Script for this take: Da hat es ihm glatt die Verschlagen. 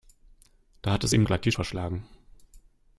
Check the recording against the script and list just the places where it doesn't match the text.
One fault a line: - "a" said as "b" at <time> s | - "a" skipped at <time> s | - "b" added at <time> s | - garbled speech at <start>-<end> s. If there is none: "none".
none